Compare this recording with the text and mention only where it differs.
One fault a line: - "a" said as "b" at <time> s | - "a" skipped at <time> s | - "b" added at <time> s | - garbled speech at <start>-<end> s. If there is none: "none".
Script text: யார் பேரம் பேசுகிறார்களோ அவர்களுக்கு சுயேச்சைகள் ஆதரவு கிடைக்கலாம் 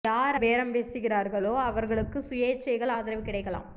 none